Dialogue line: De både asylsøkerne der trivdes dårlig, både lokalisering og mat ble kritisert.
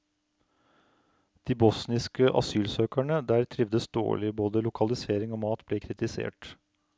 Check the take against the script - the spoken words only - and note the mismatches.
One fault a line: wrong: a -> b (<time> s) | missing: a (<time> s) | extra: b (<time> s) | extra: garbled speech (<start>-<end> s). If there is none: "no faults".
wrong: både -> bosniske (1.6 s)